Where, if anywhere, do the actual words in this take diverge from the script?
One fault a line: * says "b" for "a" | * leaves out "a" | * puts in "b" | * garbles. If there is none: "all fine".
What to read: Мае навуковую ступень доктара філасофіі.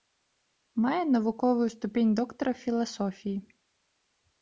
all fine